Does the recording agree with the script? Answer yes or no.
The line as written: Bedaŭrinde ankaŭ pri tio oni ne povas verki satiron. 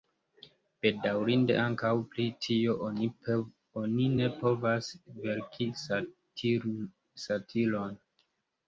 yes